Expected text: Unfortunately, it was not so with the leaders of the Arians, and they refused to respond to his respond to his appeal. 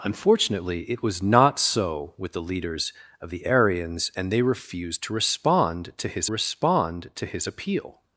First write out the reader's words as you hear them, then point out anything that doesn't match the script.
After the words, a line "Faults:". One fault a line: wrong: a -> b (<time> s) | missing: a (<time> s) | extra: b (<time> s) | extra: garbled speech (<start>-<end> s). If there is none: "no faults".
Unfortunately, it was not so with the leaders of the Arians, and they refused to respond to his respond to his appeal.
Faults:
no faults